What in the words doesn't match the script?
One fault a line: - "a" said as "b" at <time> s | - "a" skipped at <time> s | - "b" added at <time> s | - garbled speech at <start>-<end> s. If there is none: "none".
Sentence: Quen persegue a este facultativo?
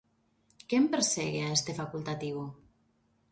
none